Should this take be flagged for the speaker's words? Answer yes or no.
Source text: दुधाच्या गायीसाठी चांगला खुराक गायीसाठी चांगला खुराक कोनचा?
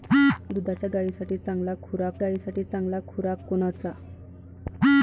no